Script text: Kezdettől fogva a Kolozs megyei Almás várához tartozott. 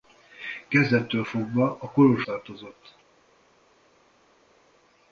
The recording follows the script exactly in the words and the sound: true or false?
false